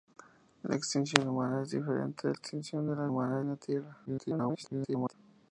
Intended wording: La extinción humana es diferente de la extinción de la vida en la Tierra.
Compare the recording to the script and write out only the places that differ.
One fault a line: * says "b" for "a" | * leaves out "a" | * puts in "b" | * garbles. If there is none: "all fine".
* leaves out "la"
* says "humana" for "vida"
* garbles